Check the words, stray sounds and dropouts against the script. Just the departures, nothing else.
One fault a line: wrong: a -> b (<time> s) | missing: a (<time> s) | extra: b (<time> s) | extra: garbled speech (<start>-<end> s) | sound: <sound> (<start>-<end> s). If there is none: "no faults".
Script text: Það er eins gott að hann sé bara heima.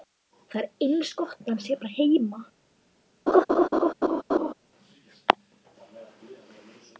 sound: laugh (3.3-4.5 s)